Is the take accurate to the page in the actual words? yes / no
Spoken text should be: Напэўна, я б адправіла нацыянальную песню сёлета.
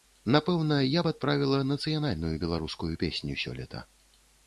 no